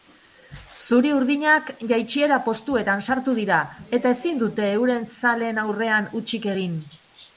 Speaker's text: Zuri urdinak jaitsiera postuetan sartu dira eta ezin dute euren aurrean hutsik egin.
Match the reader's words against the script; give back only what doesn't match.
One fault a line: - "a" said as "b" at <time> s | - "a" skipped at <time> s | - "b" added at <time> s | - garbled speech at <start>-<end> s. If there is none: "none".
- "zaleen" added at 5.2 s